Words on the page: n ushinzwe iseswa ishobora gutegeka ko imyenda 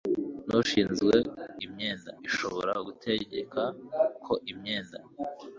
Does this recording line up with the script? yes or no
no